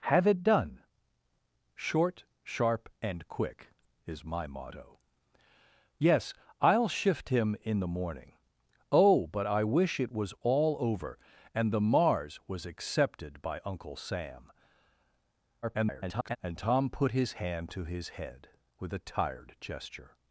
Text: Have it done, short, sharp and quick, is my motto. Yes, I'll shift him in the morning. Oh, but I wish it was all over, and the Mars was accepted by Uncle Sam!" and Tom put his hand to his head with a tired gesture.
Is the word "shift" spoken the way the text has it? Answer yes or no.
yes